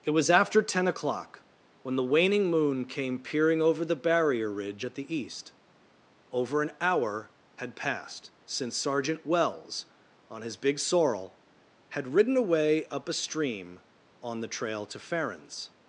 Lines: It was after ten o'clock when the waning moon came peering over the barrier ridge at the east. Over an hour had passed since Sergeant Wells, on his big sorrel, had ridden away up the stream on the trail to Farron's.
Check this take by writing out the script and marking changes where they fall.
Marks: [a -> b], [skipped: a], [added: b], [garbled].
It was after ten o'clock when the waning moon came peering over the barrier ridge at the east. Over an hour had passed since Sergeant Wells, on his big sorrel, had ridden away up [the -> a] stream on the trail to Farron's.